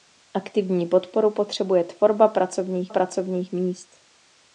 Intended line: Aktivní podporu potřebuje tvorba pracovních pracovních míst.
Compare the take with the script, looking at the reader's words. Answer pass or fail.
pass